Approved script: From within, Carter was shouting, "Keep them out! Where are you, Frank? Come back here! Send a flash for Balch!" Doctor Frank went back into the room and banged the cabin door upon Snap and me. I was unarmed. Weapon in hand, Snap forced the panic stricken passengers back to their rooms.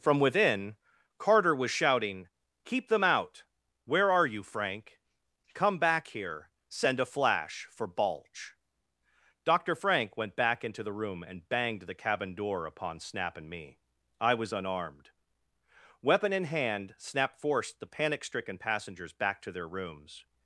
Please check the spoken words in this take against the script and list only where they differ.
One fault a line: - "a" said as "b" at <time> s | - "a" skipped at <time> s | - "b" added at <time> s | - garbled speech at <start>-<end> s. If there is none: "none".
none